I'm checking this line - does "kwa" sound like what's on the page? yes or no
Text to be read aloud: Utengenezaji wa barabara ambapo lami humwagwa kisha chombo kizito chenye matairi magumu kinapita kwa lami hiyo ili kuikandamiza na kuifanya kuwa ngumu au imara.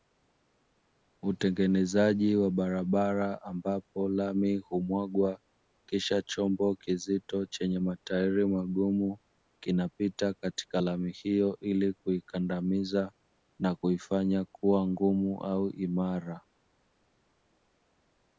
no